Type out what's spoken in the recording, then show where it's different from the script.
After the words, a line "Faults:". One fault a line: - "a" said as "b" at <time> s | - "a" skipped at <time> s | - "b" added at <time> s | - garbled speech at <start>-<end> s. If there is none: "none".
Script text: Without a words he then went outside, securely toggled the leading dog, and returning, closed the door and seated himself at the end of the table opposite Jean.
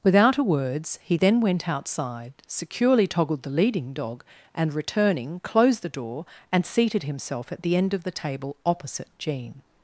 Without a words he then went outside, securely toggled the leading dog, and returning, closed the door and seated himself at the end of the table opposite Jean.
Faults:
none